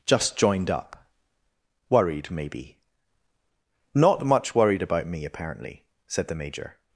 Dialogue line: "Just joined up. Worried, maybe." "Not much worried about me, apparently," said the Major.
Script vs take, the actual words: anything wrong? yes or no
no